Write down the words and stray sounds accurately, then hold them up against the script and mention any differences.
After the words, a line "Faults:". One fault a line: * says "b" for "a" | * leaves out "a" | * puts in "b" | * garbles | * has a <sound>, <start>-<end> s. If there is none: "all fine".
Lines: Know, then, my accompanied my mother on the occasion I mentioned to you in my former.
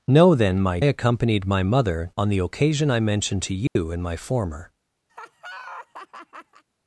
Know, then, my accompanied my mother on the occasion I mentioned to you in my former.
Faults:
* has a dropout, 3.7-3.8 s
* has a laugh, 5.1-6.6 s